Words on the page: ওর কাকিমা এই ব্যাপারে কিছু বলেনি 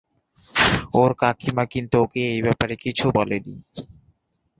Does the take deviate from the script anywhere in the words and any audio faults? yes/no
yes